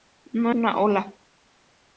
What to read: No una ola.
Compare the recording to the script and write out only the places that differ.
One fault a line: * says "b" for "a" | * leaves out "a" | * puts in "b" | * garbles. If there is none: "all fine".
all fine